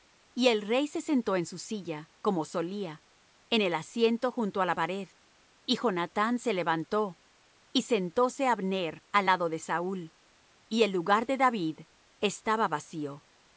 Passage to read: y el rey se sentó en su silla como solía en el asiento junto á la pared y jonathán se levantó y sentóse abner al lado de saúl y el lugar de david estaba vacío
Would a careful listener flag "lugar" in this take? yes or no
no